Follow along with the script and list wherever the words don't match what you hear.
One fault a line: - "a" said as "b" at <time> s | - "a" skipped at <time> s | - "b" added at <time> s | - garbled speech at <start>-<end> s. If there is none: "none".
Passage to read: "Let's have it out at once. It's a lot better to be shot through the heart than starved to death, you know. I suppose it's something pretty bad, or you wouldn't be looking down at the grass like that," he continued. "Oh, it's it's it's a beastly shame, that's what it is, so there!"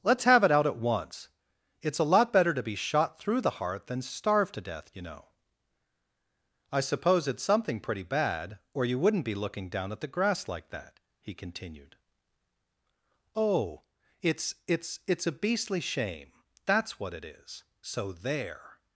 none